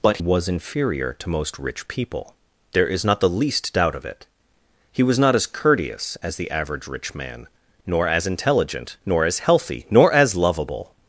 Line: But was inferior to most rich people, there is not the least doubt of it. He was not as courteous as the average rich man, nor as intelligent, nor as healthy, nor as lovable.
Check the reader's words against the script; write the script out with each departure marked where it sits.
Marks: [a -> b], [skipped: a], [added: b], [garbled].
But was inferior to most rich people, there is not the least doubt of it. He was not as courteous as the average rich man, nor as intelligent, nor as healthy, nor as lovable.